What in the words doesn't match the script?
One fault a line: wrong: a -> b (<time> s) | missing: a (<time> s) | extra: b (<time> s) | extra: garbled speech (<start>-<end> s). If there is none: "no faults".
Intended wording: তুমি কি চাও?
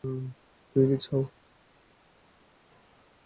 no faults